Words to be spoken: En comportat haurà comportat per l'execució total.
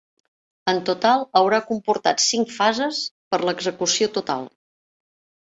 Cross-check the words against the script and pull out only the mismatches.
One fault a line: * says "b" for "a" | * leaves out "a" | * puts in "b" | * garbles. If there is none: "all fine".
* says "total" for "comportat"
* puts in "cinc fases"